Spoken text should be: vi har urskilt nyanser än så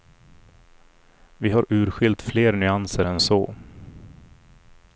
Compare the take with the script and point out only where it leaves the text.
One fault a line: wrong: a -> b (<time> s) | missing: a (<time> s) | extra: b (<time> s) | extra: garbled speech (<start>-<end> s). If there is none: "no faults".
extra: fler (2.2 s)